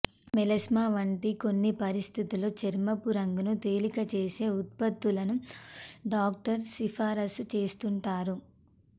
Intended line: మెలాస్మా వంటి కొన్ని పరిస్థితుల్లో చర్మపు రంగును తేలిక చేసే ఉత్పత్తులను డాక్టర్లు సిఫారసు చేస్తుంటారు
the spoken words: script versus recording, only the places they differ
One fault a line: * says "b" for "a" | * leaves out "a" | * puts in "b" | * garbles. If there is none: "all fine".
all fine